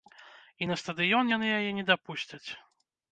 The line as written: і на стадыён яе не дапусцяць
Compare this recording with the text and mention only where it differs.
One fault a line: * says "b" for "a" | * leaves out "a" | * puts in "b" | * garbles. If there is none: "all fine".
* puts in "яны"